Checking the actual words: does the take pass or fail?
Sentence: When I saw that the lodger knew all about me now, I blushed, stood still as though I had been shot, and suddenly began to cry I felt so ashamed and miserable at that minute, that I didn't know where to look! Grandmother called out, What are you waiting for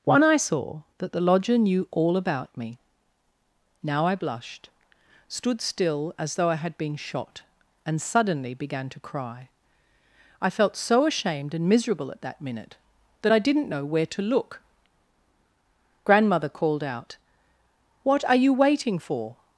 fail